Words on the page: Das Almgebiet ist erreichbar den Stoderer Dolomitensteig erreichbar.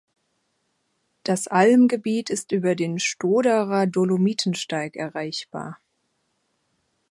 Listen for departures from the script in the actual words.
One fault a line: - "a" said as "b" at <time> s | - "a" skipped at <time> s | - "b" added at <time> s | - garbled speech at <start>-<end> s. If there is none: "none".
- "erreichbar" said as "über" at 2.5 s